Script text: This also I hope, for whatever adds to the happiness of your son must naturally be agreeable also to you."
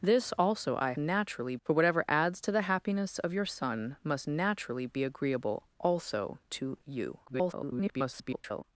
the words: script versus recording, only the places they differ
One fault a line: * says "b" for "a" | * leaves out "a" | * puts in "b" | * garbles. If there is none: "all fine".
* says "naturally" for "hope"
* garbles